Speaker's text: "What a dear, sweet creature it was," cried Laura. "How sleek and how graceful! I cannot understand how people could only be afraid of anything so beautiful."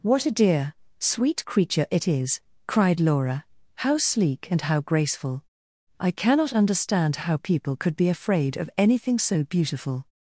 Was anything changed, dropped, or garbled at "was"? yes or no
yes